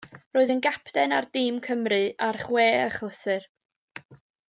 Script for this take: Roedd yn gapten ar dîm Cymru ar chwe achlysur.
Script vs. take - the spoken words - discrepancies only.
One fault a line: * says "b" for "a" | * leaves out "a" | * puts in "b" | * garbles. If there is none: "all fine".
all fine